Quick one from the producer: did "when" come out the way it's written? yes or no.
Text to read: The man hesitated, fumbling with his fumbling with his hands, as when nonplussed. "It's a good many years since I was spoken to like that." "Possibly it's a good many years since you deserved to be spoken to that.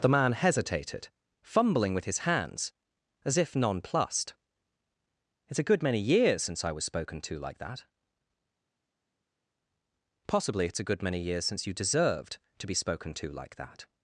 no